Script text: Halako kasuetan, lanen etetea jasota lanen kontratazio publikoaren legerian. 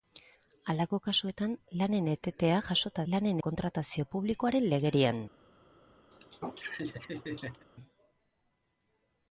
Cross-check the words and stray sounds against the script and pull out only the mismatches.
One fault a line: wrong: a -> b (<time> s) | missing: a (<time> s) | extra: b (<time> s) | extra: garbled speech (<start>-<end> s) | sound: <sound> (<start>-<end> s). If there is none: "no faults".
sound: laugh (6.1-7.7 s)